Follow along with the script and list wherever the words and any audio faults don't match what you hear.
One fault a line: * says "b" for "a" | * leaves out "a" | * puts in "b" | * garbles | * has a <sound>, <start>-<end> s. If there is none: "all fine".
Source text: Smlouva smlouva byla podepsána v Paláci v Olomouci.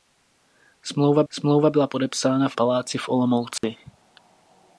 * has a dropout, 3.6-3.6 s